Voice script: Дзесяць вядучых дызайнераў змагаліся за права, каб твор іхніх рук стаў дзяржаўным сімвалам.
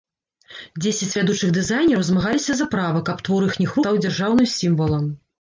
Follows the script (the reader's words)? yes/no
no